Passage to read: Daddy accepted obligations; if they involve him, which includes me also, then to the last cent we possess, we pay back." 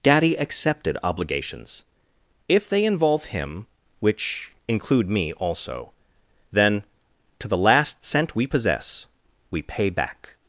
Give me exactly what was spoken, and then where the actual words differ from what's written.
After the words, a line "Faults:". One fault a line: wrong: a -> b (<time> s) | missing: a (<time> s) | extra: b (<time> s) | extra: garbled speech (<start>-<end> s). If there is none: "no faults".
Daddy accepted obligations; if they involve him, which include me also, then to the last cent we possess, we pay back."
Faults:
wrong: includes -> include (4.7 s)